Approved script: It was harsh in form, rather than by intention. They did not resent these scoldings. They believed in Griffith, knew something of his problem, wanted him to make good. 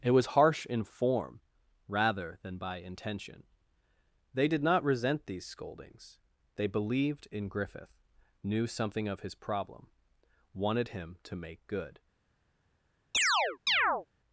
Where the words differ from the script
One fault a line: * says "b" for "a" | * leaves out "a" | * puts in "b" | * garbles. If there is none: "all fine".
all fine